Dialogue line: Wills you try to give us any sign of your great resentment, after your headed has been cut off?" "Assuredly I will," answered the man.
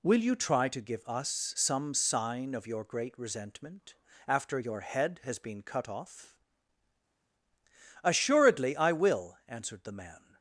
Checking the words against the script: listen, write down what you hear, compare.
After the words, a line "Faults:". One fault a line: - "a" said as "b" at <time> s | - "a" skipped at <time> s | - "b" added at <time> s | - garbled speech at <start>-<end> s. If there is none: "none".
Will you try to give us some sign of your great resentment, after your head has been cut off?" "Assuredly I will," answered the man.
Faults:
- "Wills" said as "Will" at 0.0 s
- "any" said as "some" at 1.6 s
- "headed" said as "head" at 4.8 s